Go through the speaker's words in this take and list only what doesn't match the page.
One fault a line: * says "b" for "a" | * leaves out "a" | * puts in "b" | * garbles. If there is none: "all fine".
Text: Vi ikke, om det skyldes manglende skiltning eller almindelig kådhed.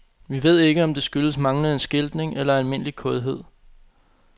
* puts in "ved"